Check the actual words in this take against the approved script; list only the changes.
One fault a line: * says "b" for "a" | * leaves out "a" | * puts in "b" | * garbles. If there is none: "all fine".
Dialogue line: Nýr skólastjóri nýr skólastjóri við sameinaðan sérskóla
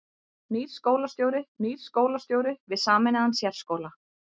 all fine